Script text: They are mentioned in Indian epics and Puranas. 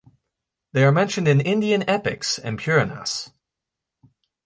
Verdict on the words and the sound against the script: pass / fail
pass